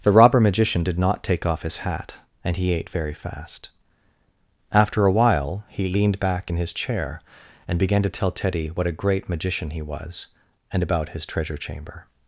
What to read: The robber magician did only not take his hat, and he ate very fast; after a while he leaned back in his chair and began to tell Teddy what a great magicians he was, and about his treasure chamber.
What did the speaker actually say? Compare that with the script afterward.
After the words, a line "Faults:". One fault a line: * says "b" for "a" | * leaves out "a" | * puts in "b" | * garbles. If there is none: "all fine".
The robber magician did not take off his hat, and he ate very fast; after a while he leaned back in his chair and began to tell Teddy what a great magician he was, and about his treasure chamber.
Faults:
* leaves out "only"
* puts in "off"
* says "magician" for "magicians"